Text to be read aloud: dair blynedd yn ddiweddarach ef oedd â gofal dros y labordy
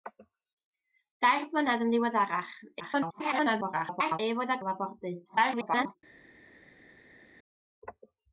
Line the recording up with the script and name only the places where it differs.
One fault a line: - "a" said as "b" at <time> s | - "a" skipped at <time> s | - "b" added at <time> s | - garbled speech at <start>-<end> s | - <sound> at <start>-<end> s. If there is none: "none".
- garbled speech at 2.8-4.2 s
- "gofal dros" skipped at 4.6 s
- garbled speech at 5.2-6.0 s